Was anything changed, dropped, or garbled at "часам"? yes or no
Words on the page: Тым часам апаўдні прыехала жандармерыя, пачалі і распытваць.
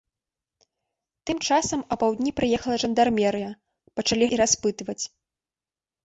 no